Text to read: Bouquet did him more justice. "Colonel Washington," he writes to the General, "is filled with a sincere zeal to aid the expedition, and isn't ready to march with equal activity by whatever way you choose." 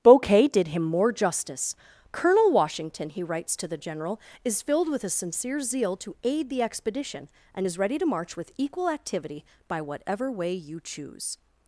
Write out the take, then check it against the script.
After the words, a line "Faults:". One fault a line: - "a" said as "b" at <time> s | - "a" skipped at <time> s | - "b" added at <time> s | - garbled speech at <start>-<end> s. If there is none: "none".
Bouquet did him more justice. "Colonel Washington," he writes to the General, "is filled with a sincere zeal to aid the expedition, and is ready to march with equal activity by whatever way you choose."
Faults:
- "isn't" said as "is" at 7.6 s